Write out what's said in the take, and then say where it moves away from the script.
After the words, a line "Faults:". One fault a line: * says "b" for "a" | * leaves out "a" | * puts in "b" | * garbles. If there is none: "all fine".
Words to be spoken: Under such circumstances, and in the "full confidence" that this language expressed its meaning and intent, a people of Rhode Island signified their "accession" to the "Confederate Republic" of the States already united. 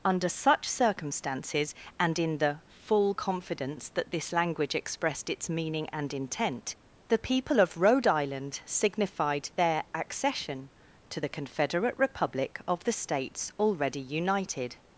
Under such circumstances, and in the "full confidence" that this language expressed its meaning and intent, the people of Rhode Island signified their "accession" to the "Confederate Republic" of the States already united.
Faults:
* says "the" for "a"